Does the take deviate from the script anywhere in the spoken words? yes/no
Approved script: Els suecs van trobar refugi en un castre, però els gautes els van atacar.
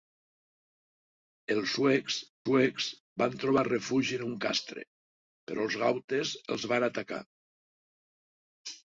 yes